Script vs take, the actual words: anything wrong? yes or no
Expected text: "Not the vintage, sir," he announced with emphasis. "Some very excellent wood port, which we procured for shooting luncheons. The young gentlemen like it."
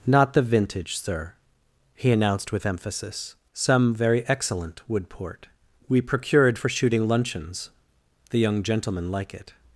yes